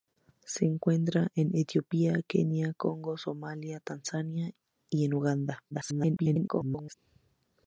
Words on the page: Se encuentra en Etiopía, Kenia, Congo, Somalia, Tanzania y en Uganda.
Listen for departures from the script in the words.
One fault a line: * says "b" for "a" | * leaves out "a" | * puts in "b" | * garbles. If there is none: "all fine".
* garbles